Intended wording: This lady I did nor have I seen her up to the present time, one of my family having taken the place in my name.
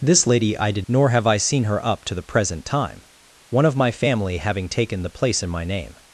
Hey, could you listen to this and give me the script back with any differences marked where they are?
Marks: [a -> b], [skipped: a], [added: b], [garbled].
This lady I did nor have I seen her up to the present time, one of my family having taken the place in my name.